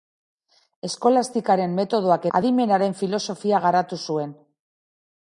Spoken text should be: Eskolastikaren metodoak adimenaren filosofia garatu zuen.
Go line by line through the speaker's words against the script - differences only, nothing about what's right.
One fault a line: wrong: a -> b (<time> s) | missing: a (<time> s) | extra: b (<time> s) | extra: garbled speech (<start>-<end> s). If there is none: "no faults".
no faults